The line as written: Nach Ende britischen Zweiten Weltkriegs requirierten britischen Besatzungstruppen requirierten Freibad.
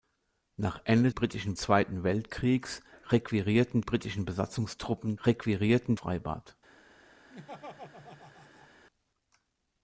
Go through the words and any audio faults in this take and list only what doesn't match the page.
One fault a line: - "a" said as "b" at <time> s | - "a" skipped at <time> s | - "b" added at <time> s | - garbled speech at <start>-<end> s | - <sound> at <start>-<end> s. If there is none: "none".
- laugh at 7.3-8.7 s